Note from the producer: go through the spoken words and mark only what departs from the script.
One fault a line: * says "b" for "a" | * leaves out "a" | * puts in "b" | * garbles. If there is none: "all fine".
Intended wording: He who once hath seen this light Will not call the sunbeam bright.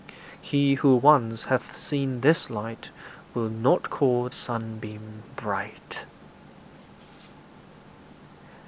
* leaves out "the"